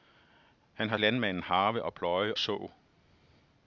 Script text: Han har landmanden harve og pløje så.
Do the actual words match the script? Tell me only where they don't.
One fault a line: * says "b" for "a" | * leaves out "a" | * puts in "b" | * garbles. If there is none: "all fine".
all fine